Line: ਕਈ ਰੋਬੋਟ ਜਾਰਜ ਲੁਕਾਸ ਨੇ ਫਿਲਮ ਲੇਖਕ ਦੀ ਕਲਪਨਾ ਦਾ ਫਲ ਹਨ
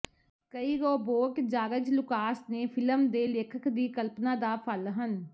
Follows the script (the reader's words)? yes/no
no